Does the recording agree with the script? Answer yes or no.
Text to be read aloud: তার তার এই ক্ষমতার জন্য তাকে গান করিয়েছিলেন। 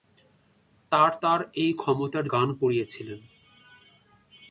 no